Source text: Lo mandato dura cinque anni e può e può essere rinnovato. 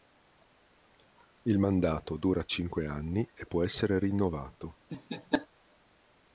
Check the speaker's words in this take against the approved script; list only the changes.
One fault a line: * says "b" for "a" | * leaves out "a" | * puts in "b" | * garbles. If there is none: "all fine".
* says "Il" for "Lo"
* leaves out "e può"